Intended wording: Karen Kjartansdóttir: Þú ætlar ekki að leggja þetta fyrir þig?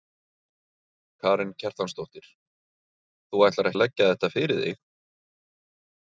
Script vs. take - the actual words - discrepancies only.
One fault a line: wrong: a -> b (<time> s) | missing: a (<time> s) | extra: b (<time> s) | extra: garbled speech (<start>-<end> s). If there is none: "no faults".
missing: ekki (3.7 s)